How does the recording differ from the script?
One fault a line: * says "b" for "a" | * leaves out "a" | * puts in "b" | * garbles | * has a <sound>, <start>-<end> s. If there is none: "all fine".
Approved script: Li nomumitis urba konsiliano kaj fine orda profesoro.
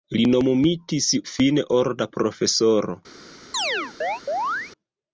* leaves out "urba konsiliano kaj"
* has a chirp, 3.5-4.7 s